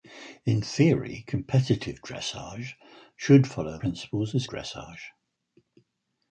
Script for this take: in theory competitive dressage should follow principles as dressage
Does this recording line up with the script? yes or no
yes